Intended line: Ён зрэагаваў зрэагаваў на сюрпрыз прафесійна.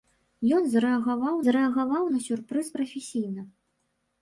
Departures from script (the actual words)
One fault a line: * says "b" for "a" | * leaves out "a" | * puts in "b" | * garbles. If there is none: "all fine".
all fine